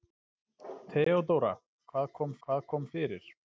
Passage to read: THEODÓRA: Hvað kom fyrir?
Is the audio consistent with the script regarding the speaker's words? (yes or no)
no